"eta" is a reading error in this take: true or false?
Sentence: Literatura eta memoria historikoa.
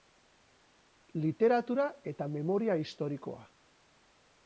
false